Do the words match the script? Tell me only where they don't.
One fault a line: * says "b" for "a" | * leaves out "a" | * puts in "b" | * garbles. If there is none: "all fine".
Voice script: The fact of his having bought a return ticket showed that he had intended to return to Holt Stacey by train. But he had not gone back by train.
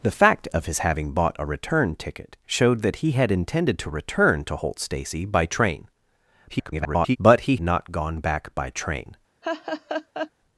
* garbles
* leaves out "had"